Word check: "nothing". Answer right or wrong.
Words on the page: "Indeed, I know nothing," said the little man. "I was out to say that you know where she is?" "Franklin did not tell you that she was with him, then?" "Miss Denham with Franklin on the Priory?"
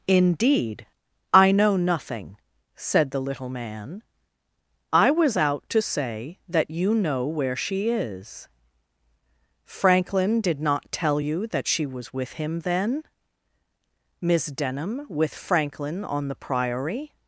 right